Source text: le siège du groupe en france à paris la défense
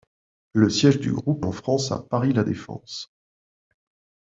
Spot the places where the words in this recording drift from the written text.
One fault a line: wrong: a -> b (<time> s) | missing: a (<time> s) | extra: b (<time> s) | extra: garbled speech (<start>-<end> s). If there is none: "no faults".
no faults